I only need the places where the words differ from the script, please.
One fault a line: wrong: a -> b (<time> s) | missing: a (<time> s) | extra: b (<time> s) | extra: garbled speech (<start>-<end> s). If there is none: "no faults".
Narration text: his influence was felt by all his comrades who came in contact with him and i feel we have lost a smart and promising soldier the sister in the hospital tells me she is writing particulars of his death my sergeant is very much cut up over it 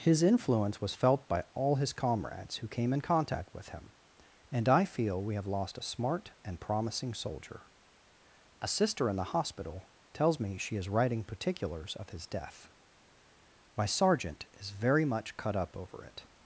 wrong: the -> a (8.6 s)